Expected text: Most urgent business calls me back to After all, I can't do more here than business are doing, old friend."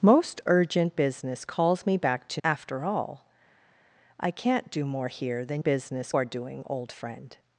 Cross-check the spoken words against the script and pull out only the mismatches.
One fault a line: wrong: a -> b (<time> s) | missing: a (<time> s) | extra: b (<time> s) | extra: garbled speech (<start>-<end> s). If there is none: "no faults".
no faults